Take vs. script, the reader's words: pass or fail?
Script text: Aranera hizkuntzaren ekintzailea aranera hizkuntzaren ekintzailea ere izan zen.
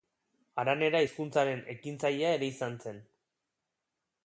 fail